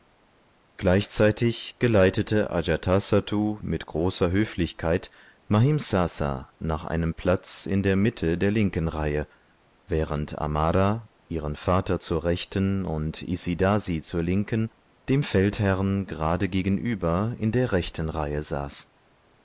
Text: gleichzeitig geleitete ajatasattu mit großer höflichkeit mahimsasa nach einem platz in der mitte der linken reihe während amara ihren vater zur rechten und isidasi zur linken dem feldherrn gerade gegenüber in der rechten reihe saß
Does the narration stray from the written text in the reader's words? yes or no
no